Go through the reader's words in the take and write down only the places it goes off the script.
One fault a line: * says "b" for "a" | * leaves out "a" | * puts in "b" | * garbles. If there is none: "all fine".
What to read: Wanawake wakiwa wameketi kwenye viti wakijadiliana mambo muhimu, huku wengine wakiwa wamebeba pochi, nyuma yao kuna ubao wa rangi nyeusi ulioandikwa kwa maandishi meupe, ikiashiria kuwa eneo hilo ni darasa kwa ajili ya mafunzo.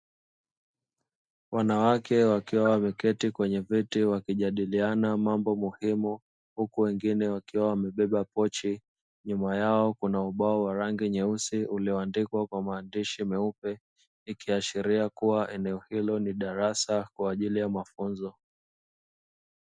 all fine